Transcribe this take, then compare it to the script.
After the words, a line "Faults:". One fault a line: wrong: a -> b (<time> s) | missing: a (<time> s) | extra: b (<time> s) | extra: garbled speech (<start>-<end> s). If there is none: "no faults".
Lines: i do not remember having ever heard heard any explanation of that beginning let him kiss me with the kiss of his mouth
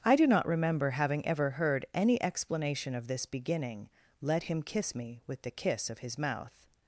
i do not remember having ever heard any explanation of this beginning let him kiss me with the kiss of his mouth
Faults:
missing: heard (1.9 s)
wrong: that -> this (3.1 s)